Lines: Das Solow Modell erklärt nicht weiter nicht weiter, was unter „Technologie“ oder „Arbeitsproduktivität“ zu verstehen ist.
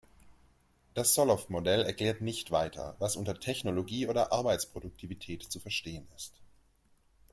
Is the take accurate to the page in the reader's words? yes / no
no